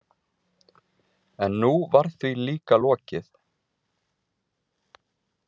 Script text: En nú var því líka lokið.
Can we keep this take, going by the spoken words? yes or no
yes